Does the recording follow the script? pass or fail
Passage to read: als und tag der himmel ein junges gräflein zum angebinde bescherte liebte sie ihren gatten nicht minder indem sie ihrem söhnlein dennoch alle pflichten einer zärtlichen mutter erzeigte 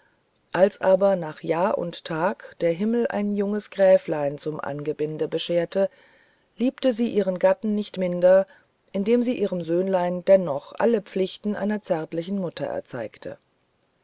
fail